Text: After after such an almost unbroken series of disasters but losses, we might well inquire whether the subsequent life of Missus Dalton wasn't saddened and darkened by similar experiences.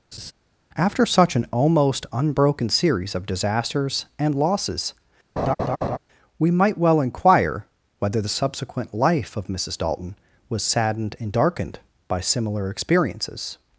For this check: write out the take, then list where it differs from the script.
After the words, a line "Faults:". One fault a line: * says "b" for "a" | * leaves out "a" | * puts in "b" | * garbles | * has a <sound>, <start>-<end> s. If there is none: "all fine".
After such an almost unbroken series of disasters and losses, we might well inquire whether the subsequent life of Missus Dalton was saddened and darkened by similar experiences.
Faults:
* has a laugh, 0.1-0.3 s
* leaves out "after"
* says "and" for "but"
* has a laugh, 5.4-6.0 s
* says "was" for "wasn't"